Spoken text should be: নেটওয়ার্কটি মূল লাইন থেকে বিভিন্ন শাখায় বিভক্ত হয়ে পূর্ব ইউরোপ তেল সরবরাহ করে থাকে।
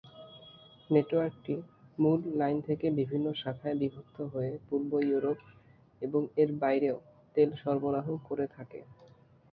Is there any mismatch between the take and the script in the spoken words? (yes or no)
yes